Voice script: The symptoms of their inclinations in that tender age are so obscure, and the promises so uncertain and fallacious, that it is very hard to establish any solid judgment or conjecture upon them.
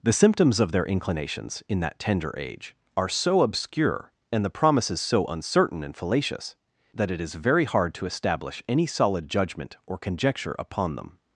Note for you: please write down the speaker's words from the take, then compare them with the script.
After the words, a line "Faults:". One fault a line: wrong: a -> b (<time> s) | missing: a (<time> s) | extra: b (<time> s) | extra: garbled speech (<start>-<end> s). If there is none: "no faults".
The symptoms of their inclinations in that tender age are so obscure, and the promises so uncertain and fallacious, that it is very hard to establish any solid judgment or conjecture upon them.
Faults:
no faults